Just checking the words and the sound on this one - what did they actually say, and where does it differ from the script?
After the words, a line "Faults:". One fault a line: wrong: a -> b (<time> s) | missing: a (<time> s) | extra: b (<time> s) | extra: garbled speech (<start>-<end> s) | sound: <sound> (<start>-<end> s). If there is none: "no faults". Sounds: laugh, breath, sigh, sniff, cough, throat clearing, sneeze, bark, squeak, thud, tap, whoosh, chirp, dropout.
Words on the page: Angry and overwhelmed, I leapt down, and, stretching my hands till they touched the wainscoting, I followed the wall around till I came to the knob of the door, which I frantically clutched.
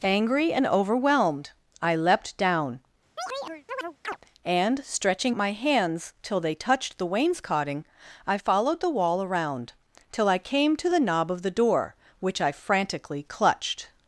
Angry and overwhelmed, I leapt down, and, stretching my hands till they touched the wainscoting, I followed the wall around till I came to the knob of the door, which I frantically clutched.
Faults:
sound: chirp (3.2-4.2 s)